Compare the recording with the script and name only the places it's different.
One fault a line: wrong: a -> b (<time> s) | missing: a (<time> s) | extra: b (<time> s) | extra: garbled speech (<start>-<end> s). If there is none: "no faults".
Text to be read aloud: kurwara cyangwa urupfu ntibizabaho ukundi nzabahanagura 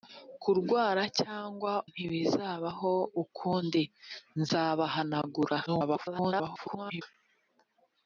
missing: urupfu (1.7 s)
extra: garbled speech (5.7-7.0 s)